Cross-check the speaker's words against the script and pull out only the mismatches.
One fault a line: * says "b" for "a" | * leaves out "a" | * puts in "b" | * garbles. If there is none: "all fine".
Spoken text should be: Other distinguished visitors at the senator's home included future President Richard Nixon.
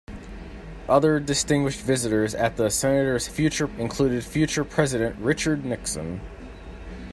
* says "future" for "home"